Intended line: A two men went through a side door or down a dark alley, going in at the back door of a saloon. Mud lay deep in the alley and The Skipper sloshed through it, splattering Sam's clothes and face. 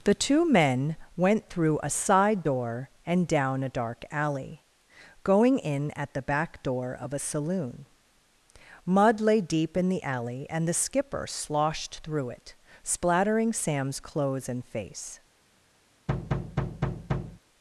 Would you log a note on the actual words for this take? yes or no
yes